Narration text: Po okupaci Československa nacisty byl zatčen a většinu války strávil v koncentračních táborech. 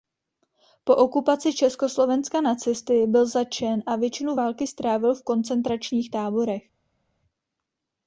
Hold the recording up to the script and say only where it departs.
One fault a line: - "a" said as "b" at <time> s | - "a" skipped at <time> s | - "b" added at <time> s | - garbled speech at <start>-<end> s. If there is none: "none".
none